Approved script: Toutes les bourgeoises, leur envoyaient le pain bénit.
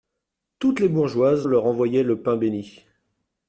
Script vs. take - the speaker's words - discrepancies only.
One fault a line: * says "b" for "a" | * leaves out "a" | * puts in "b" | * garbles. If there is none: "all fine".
all fine